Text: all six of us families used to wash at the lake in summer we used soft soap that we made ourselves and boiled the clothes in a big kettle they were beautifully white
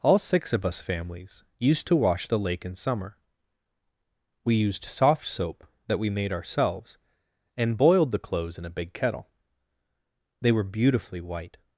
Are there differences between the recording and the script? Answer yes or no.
yes